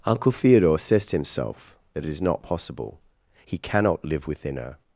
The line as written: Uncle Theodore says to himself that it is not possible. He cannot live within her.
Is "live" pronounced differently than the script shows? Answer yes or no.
no